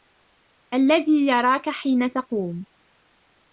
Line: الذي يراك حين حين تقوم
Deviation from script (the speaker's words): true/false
true